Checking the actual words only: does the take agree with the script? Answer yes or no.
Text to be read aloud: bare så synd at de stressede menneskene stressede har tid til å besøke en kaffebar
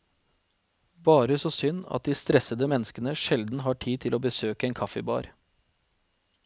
no